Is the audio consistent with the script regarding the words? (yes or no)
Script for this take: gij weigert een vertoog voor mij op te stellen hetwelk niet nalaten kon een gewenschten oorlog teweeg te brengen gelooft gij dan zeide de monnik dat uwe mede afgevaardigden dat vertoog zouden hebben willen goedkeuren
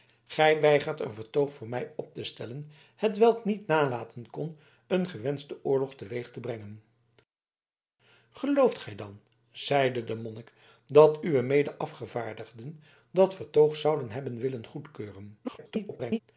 no